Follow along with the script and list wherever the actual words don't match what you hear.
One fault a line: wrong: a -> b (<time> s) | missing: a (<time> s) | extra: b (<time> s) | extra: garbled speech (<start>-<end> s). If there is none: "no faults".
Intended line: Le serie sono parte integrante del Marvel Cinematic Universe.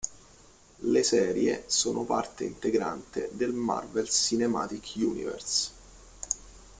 no faults